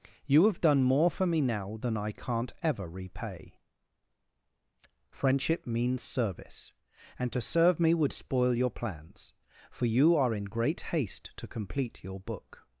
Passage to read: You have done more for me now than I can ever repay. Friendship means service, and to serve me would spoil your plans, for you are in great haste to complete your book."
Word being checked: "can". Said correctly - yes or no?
no